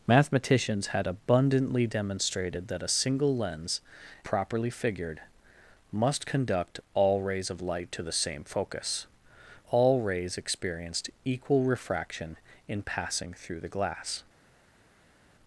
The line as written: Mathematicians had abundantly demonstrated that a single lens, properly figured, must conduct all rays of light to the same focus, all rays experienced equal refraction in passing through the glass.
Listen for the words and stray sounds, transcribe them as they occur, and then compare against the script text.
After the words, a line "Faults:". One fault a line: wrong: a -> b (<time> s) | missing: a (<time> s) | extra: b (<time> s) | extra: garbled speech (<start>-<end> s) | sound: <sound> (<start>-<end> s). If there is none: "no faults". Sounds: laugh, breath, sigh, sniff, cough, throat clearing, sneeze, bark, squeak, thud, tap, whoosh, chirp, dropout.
Mathematicians had abundantly demonstrated that a single lens, properly figured, must conduct all rays of light to the same focus, all rays experienced equal refraction in passing through the glass.
Faults:
no faults